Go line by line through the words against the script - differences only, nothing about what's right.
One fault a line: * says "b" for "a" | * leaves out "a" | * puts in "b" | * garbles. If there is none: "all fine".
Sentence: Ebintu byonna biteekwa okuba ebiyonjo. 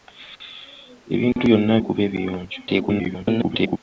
* leaves out "biteekwa"
* garbles